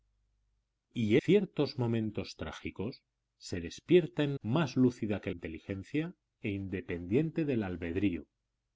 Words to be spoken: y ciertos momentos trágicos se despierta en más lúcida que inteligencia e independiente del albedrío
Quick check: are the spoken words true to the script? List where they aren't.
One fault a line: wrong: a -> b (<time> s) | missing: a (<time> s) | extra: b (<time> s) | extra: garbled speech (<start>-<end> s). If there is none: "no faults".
no faults